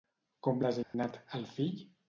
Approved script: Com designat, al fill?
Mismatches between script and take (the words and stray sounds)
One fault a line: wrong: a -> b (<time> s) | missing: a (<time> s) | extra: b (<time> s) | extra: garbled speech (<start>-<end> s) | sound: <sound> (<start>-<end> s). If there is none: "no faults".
sound: dropout (0.8-0.9 s)